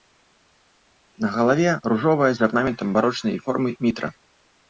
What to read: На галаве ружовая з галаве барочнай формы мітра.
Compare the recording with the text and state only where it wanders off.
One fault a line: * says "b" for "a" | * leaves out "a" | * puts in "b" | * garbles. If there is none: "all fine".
* says "арнаментам" for "галаве"